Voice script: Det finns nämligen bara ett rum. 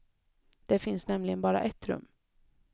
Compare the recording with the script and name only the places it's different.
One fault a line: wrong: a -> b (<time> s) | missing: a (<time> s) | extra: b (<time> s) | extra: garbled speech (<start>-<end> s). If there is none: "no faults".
no faults